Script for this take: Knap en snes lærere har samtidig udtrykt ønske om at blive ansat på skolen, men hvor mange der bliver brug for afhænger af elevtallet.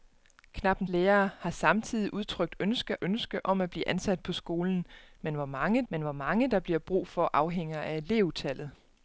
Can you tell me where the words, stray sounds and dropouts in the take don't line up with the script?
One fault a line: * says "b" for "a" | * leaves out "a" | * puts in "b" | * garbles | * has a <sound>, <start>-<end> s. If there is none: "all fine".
* leaves out "snes"
* puts in "ønske"
* puts in "men hvor mange"